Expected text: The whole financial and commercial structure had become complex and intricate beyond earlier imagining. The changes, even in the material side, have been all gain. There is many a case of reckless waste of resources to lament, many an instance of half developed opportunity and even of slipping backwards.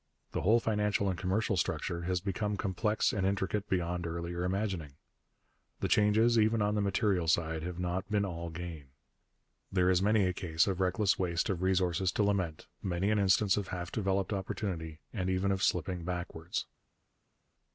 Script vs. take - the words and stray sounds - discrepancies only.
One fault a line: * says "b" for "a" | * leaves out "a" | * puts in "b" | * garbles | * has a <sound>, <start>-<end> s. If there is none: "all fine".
* says "has" for "had"
* says "on" for "in"
* puts in "not"